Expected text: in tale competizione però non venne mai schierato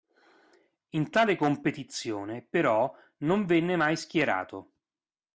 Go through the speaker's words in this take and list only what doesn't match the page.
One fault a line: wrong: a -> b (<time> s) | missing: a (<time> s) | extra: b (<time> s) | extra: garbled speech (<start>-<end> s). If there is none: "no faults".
no faults